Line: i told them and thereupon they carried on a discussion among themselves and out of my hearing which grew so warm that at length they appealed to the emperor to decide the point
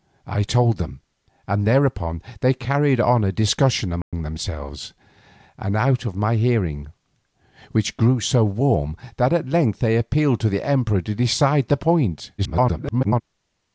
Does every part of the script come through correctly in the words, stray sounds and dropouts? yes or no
no